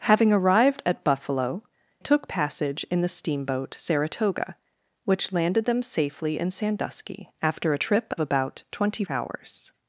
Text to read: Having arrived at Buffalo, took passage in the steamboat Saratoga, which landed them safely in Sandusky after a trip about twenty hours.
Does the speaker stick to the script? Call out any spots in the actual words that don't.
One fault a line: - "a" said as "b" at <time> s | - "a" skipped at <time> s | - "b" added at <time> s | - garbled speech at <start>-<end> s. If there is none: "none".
none